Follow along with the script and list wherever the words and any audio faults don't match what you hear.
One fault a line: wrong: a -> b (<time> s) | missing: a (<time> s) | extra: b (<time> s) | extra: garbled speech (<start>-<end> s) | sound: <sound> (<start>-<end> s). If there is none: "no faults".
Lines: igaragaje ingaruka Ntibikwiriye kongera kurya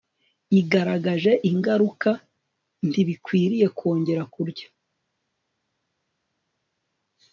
no faults